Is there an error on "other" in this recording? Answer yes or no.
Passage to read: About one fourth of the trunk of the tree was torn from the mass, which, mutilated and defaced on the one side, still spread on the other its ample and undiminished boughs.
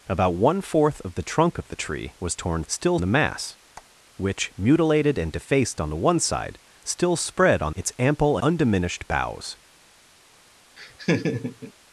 yes